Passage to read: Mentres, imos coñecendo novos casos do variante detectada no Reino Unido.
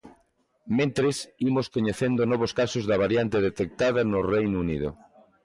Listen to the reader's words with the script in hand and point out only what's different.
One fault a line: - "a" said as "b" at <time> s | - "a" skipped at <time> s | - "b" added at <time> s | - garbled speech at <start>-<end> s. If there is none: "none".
- "do" said as "da" at 2.9 s